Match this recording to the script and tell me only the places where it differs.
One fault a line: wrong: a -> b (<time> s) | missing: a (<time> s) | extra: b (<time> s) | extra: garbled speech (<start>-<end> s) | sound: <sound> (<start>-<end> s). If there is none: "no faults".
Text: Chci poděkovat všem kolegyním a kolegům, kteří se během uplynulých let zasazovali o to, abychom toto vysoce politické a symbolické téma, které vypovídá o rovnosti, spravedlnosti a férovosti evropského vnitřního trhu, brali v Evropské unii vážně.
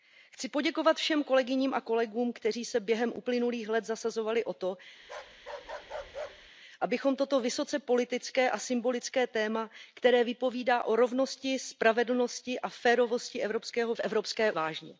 sound: bark (5.0-6.5 s)
missing: vnitřního trhu brali (13.9 s)
missing: unii (14.5 s)